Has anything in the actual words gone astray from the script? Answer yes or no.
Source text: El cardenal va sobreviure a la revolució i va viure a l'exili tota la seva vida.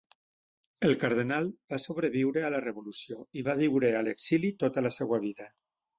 no